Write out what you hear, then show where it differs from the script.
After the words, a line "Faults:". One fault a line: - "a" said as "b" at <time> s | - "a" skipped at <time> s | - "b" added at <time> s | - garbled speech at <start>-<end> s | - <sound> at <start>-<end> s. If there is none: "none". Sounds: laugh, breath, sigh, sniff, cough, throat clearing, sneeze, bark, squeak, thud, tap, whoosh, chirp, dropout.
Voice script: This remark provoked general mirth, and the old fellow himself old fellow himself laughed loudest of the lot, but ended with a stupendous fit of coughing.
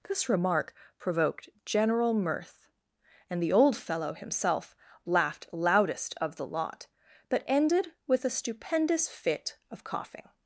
This remark provoked general mirth, and the old fellow himself laughed loudest of the lot, but ended with a stupendous fit of coughing.
Faults:
- "old fellow himself" skipped at 4.7 s